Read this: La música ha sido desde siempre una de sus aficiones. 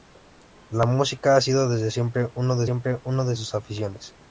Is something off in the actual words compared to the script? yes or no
yes